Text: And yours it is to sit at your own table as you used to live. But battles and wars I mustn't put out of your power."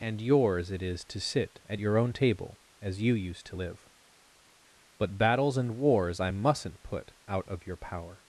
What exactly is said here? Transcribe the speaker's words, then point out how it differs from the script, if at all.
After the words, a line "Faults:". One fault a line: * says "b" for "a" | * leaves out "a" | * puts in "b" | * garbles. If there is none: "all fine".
And yours it is to sit at your own table as you used to live. But battles and wars I mustn't put out of your power."
Faults:
all fine